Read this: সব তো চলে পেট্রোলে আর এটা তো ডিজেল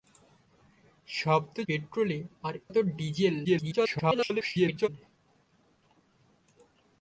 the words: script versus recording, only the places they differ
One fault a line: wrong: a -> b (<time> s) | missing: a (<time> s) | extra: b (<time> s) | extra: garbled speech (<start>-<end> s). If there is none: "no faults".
missing: চলে (1.6 s)
missing: এটা (2.5 s)
extra: garbled speech (3.4-4.9 s)